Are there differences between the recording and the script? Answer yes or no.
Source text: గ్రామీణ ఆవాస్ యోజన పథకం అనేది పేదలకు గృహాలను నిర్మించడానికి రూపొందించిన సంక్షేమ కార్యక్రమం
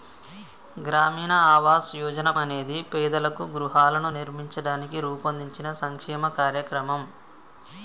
yes